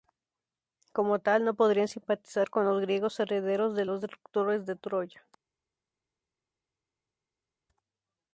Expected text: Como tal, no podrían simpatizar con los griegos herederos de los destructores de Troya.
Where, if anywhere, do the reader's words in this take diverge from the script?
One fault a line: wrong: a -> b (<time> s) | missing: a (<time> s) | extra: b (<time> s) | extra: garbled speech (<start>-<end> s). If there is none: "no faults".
no faults